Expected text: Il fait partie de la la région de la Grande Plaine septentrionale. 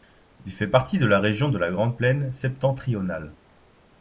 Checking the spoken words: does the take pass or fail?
fail